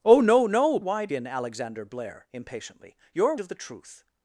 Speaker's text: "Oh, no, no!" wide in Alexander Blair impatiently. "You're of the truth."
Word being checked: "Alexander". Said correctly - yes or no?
yes